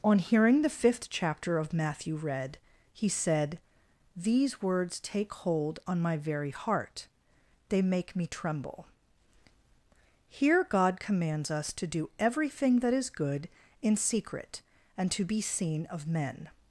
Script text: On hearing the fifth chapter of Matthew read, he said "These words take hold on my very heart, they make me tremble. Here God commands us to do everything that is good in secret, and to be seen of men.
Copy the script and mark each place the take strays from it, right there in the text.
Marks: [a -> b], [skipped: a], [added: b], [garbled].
On hearing the fifth chapter of Matthew read, he said "These words take hold on my very heart, they make me tremble. Here God commands us to do everything that is good in secret, and to be seen of men.